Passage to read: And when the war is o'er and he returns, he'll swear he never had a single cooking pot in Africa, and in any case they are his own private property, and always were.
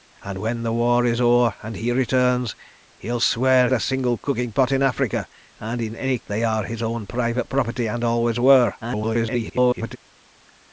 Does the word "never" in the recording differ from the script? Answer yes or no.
yes